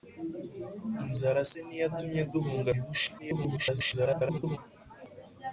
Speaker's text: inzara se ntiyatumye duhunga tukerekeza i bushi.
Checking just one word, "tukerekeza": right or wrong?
wrong